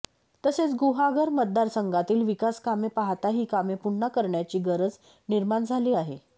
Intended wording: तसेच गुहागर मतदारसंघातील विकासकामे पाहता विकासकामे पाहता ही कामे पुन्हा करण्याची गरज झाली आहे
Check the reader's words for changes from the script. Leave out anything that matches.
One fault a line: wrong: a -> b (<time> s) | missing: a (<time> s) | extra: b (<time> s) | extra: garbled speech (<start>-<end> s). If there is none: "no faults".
missing: विकासकामे पाहता (3.3 s)
extra: निर्माण (5.3 s)